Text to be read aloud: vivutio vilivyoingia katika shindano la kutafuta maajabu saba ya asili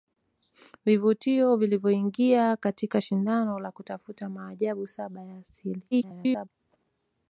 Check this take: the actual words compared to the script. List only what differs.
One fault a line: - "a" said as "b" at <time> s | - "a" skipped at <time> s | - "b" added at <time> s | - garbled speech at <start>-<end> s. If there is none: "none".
- garbled speech at 5.9-6.5 s